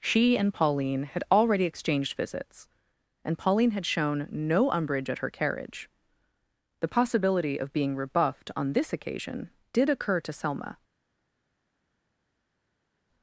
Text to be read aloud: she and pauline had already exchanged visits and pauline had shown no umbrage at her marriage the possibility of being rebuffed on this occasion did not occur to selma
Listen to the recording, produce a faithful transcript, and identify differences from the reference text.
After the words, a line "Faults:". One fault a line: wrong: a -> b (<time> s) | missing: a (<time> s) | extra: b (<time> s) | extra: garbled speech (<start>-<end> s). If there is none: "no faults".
she and pauline had already exchanged visits and pauline had shown no umbrage at her carriage the possibility of being rebuffed on this occasion did occur to selma
Faults:
wrong: marriage -> carriage (5.3 s)
missing: not (9.9 s)